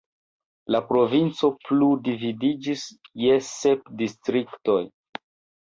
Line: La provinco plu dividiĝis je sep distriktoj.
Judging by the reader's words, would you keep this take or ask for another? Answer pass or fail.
pass